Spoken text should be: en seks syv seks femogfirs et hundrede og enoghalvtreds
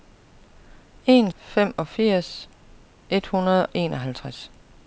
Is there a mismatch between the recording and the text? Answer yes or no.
yes